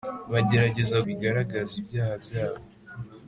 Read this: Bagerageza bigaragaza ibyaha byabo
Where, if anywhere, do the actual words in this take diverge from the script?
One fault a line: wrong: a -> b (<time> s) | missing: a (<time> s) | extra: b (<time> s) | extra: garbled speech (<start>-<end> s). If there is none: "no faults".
no faults